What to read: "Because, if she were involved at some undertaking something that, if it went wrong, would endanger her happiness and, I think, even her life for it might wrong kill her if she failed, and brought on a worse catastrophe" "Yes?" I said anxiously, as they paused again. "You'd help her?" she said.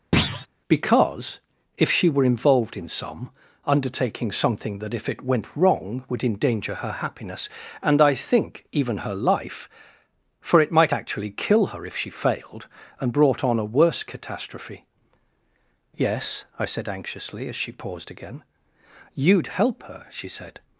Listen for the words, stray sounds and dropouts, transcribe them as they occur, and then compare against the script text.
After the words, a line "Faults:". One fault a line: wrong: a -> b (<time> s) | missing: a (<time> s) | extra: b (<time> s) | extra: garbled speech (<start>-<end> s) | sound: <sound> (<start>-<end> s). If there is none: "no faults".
"Because, if she were involved in some undertaking something that, if it went wrong, would endanger her happiness and, I think, even her life for it might actually kill her if she failed, and brought on a worse catastrophe" "Yes?" I said anxiously, as she paused again. "You'd help her?" she said.
Faults:
sound: thud (0.1-0.5 s)
wrong: at -> in (2.8 s)
wrong: wrong -> actually (10.9 s)
wrong: they -> she (17.6 s)